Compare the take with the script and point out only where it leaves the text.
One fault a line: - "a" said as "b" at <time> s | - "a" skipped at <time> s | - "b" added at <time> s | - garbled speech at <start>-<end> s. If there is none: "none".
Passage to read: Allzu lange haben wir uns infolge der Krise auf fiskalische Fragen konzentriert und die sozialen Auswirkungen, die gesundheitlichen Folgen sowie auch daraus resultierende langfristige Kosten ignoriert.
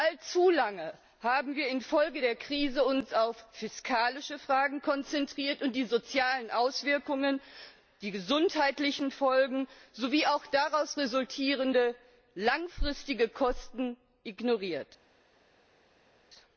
none